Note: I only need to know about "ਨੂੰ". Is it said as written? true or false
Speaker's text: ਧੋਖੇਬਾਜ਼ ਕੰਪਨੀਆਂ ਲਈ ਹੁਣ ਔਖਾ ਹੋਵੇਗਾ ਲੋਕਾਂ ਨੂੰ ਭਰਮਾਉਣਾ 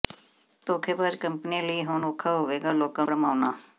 false